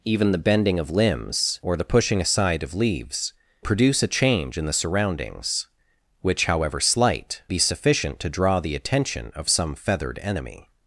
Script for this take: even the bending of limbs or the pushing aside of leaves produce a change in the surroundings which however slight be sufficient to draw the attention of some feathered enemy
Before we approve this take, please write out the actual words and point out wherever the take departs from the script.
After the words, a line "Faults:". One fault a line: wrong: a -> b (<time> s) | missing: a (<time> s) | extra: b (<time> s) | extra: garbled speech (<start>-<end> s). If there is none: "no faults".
even the bending of limbs or the pushing aside of leaves produce a change in the surroundings which however slight be sufficient to draw the attention of some feathered enemy
Faults:
no faults